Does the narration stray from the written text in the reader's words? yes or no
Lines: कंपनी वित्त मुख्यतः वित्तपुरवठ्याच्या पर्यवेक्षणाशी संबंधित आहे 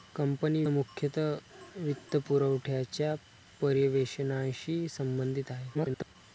yes